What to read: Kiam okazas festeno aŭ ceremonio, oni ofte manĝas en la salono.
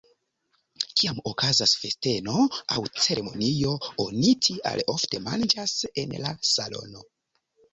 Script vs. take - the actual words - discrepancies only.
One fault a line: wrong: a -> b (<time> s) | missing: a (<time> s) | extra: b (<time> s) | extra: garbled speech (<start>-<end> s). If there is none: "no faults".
extra: tial (4.5 s)